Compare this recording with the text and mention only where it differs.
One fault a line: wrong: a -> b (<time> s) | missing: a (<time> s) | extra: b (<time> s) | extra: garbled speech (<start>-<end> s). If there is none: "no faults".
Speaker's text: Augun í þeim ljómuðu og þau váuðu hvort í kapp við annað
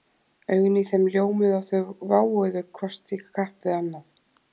no faults